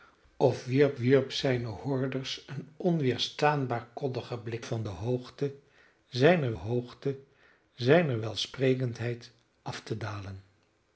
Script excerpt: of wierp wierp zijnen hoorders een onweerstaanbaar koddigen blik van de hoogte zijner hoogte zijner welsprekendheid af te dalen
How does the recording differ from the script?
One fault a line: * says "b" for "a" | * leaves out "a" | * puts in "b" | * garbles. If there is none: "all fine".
all fine